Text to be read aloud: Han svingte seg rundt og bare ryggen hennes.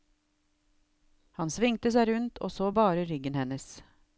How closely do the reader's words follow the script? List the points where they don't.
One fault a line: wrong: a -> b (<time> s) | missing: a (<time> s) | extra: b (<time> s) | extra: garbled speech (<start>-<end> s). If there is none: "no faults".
extra: så (2.5 s)